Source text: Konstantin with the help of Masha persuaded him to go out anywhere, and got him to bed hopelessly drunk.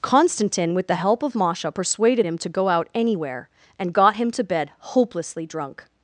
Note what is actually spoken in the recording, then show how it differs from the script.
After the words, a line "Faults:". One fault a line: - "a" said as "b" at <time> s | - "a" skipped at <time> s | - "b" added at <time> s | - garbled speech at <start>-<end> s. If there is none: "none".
Konstantin with the help of Masha persuaded him to go out anywhere, and got him to bed hopelessly drunk.
Faults:
none